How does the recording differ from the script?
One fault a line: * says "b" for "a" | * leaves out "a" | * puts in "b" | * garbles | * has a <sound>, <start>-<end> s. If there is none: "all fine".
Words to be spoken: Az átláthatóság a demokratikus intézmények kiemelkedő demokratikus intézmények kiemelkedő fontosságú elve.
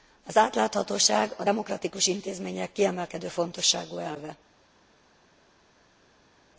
* leaves out "demokratikus intézmények kiemelkedő"